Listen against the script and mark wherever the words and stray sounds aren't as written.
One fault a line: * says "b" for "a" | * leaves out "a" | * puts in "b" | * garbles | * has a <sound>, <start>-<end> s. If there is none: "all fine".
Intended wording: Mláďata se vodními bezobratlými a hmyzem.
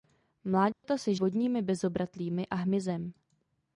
* has a dropout, 0.7-0.8 s